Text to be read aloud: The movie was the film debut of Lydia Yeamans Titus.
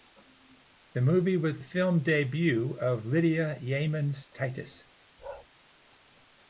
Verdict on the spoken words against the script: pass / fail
fail